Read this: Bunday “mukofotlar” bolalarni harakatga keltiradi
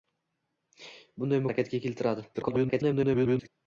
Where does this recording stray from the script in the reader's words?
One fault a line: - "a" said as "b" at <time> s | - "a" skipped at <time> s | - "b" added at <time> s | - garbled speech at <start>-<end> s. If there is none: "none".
- "mukofotlar bolalarni" skipped at 1.4 s
- garbled speech at 2.3-3.5 s